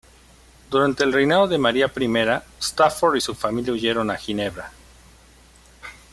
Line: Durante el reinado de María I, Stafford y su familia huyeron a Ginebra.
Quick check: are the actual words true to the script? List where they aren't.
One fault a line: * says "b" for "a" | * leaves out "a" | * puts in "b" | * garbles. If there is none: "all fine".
all fine